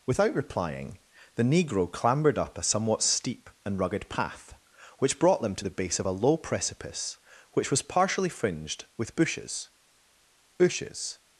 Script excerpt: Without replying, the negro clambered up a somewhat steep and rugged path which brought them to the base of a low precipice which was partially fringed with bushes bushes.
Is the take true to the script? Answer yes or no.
yes